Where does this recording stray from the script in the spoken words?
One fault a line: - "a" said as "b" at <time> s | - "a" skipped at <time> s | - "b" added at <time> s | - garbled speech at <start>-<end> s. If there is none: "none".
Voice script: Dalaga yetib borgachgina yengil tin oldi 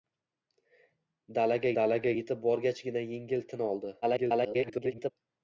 - "dalaga" added at 1.8 s
- garbled speech at 4.0-5.1 s